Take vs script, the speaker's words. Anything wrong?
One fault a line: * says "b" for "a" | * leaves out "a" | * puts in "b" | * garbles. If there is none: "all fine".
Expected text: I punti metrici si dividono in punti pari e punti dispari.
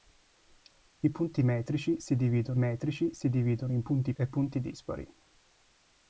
* puts in "metrici si dividono"
* leaves out "pari"